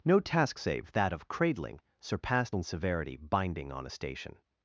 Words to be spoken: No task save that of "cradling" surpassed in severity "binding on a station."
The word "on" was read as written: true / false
true